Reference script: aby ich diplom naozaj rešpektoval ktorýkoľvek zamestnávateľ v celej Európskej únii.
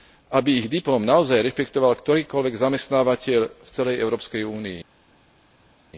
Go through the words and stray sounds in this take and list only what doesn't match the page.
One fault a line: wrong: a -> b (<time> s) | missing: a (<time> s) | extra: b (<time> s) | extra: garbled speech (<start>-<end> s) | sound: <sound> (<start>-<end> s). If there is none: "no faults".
no faults